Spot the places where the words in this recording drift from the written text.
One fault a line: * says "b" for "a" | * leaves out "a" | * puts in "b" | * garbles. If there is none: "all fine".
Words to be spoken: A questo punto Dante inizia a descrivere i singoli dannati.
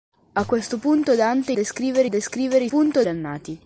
* says "descrivere" for "inizia"
* says "punto" for "singoli"